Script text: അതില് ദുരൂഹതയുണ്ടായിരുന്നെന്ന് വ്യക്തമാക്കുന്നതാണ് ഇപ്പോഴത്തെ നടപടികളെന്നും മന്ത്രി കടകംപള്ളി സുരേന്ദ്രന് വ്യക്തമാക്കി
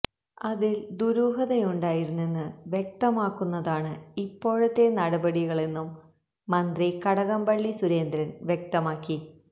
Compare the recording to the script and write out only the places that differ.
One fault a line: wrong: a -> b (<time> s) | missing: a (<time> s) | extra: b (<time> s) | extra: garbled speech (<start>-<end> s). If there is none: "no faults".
no faults